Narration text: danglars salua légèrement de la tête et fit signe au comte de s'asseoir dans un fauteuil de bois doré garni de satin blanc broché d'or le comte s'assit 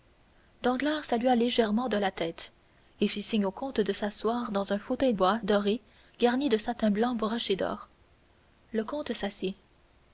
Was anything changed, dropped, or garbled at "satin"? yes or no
no